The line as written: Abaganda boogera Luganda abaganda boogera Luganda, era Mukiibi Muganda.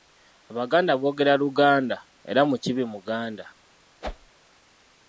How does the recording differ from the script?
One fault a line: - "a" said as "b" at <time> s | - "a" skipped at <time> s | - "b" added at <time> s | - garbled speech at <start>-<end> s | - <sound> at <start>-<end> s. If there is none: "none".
- "abaganda boogera Luganda" skipped at 2.0 s
- whoosh at 4.0-4.3 s